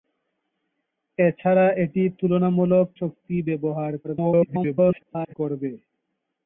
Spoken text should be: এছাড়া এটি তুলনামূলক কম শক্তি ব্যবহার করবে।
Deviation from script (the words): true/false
true